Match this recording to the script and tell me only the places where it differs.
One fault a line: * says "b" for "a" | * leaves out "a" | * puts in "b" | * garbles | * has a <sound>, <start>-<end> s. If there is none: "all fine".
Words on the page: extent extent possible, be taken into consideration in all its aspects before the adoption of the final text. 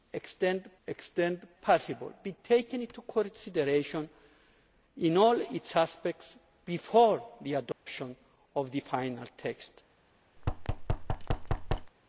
* has a dropout, 7.7-7.9 s
* has a thud, 10.4-11.9 s